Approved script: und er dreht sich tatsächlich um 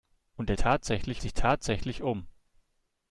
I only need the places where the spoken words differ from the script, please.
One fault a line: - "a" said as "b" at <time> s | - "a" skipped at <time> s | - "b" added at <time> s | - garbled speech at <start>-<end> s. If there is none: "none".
- "dreht" said as "tatsächlich" at 0.5 s